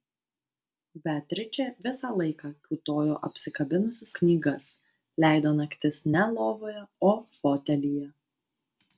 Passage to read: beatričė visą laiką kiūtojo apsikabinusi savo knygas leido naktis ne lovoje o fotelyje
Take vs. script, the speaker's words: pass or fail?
fail